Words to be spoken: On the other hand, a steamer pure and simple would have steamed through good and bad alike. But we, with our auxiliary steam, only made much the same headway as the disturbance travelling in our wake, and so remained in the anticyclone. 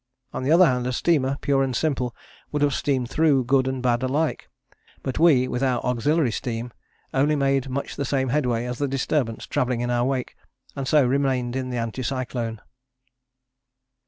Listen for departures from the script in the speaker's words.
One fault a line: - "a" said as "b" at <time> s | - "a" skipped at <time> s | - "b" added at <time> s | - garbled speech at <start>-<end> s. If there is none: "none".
none